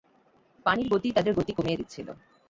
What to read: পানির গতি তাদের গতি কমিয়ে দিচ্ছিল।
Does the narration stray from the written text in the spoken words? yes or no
no